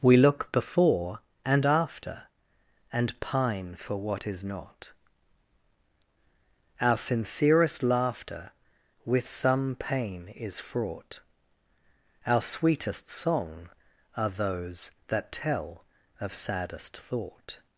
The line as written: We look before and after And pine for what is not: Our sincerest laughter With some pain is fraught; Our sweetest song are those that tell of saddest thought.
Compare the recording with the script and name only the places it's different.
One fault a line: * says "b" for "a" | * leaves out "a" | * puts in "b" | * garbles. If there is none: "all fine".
all fine